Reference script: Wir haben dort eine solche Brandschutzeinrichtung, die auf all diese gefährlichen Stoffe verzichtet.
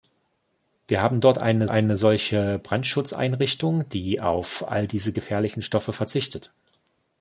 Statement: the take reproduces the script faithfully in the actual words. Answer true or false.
false